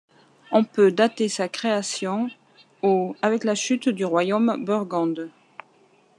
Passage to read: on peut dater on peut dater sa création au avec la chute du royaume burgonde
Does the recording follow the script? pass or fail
fail